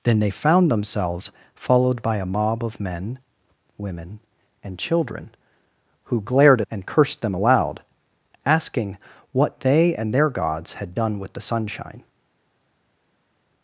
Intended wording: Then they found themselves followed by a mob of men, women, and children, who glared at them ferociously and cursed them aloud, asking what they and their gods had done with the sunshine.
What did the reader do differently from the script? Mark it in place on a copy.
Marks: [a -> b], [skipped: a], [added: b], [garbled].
Then they found themselves followed by a mob of men, women, and children, who glared [skipped: at them ferociously] and cursed them aloud, asking what they and their gods had done with the sunshine.